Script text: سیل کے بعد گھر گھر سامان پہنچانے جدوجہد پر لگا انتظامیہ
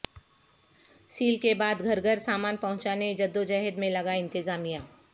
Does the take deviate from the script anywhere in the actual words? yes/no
yes